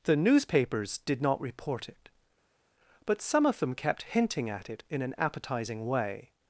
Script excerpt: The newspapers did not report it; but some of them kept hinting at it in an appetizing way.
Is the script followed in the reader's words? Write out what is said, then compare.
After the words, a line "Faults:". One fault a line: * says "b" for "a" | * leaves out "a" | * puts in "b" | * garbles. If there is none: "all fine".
The newspapers did not report it; but some of them kept hinting at it in an appetizing way.
Faults:
all fine